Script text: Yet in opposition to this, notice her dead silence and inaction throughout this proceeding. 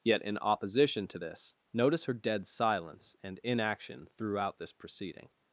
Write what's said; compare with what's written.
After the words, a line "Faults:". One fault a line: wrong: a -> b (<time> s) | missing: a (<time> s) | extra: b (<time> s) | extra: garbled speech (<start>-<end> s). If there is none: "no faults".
Yet in opposition to this, notice her dead silence and inaction throughout this proceeding.
Faults:
no faults